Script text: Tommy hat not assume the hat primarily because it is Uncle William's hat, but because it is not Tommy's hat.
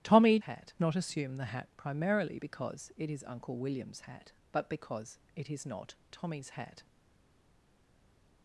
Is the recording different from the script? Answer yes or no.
no